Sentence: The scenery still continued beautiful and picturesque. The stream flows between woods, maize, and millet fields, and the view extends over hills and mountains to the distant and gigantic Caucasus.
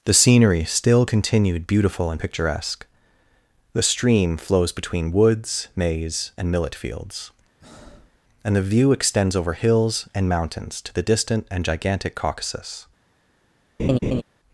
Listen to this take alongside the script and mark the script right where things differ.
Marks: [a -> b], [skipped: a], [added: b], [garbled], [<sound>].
The scenery still continued beautiful and picturesque. The stream flows between woods, maize, and millet fields, [breath] and the view extends over hills and mountains to the distant and gigantic Caucasus. [laugh]